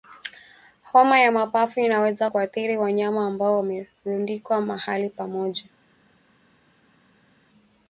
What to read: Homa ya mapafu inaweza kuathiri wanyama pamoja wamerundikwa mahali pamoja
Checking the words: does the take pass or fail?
fail